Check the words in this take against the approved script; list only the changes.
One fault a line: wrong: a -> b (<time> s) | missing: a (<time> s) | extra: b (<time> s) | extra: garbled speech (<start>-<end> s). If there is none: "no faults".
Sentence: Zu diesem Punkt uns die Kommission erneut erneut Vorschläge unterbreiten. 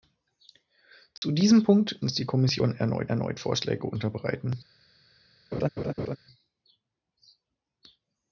no faults